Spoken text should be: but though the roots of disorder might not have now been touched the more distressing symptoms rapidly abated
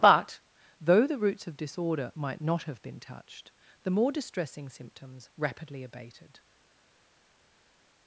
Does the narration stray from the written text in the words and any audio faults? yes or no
yes